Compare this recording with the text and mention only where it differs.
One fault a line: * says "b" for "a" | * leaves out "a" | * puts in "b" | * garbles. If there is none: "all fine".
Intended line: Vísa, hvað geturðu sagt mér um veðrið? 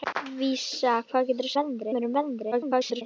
* says "veðrið" for "sagt"
* garbles